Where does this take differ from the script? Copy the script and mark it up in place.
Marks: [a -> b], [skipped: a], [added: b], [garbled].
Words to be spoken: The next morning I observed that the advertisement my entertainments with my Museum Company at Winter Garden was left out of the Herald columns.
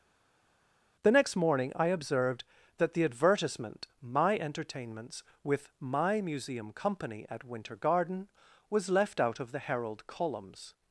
The next morning I observed that the advertisement my entertainments with my Museum Company at Winter Garden was left out of the Herald columns.